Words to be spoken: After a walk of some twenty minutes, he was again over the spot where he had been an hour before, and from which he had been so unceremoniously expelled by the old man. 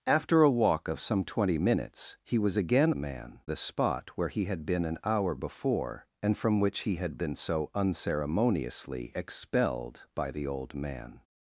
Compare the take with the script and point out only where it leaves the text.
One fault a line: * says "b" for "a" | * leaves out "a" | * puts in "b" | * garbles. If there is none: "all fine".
* says "man" for "over"